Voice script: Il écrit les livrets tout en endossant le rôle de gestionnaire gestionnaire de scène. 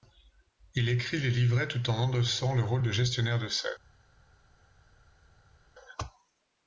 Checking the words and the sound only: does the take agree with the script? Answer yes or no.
no